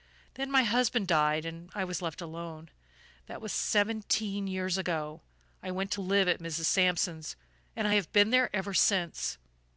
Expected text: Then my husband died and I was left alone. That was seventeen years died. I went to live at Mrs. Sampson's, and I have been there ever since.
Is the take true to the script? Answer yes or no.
no